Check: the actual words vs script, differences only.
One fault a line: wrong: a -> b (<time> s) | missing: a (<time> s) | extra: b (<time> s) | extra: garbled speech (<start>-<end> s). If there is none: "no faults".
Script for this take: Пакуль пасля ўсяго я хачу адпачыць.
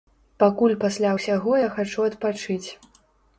no faults